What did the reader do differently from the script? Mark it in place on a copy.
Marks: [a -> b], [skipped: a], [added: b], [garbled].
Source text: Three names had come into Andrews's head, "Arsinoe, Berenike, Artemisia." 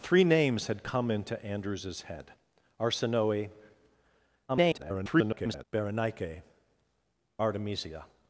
Three names had come into Andrews's head, "Arsinoe, [garbled] Berenike, Artemisia."